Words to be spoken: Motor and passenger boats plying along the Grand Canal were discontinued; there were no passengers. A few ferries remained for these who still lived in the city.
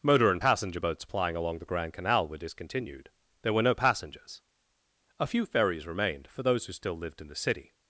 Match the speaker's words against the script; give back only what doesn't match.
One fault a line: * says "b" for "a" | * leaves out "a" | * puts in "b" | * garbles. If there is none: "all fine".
* says "those" for "these"